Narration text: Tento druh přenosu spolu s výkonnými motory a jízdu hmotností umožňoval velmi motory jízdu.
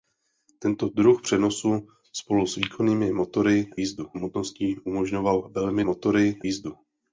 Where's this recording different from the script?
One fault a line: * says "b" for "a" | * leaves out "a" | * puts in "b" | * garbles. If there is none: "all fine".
all fine